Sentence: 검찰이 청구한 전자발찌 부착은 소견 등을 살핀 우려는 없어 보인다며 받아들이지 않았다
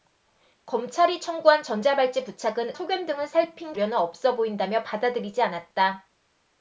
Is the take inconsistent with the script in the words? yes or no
no